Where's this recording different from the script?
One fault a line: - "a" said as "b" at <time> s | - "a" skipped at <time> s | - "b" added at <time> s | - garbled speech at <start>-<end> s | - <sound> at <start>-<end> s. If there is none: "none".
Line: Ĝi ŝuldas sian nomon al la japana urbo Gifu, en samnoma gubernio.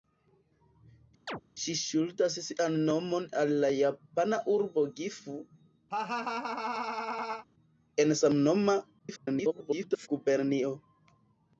- chirp at 1.3-1.4 s
- laugh at 5.9-7.5 s
- garbled speech at 9.0-10.1 s